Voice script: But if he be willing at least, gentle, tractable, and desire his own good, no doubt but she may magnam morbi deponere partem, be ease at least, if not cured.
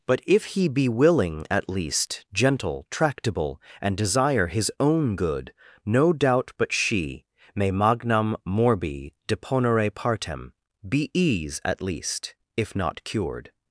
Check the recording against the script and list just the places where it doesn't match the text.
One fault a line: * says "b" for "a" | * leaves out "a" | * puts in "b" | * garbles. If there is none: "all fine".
all fine